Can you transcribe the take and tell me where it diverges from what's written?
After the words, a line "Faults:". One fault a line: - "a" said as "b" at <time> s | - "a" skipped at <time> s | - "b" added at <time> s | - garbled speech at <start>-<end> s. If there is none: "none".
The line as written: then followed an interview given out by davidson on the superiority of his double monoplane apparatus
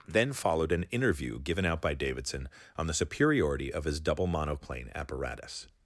then followed an interview given out by davidson on the superiority of his double monoplane apparatus
Faults:
none